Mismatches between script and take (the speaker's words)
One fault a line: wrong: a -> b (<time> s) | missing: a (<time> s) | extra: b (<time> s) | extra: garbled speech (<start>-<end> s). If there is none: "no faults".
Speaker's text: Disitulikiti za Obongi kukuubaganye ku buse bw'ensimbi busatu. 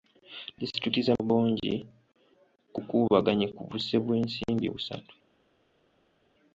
no faults